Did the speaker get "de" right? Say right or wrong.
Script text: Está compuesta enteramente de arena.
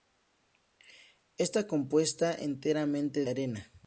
wrong